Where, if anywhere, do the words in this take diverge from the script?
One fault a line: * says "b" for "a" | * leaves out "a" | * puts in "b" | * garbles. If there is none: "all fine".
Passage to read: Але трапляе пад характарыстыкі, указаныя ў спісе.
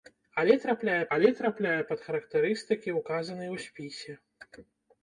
* puts in "але трапляе"